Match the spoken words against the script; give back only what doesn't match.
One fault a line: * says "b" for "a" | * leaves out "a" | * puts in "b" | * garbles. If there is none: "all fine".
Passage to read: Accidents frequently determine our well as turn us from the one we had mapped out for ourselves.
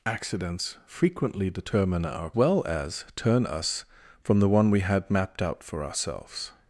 all fine